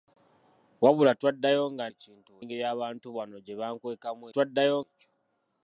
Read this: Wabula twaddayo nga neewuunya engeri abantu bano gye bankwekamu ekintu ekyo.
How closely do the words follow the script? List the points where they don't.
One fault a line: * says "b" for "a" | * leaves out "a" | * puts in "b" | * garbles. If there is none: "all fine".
* says "ekintu" for "neewuunya"
* says "twaddayo" for "ekintu"